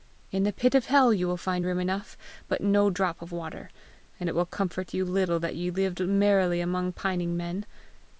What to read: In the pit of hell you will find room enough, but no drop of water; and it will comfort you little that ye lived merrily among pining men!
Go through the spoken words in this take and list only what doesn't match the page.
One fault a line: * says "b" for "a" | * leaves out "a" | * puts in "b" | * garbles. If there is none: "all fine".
all fine